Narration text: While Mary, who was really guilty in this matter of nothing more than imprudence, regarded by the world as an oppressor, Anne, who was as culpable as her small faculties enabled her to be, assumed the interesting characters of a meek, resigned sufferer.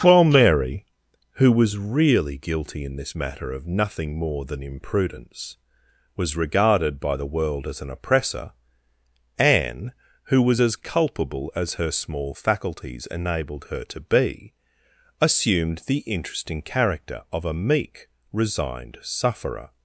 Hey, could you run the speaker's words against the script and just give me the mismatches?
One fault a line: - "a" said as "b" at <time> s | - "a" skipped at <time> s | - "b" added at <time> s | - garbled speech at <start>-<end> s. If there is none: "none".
- "was" added at 6.2 s
- "characters" said as "character" at 16.6 s